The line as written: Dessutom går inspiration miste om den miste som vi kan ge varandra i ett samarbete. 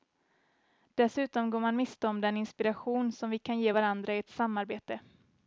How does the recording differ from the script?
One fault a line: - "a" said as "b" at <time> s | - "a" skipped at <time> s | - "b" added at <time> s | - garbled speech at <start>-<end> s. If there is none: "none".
- "inspiration" said as "man" at 1.6 s
- "miste" said as "inspiration" at 2.4 s